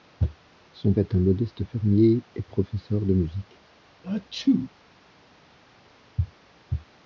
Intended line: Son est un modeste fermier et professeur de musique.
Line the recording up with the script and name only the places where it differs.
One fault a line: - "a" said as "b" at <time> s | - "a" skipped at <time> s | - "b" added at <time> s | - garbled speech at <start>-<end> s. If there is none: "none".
none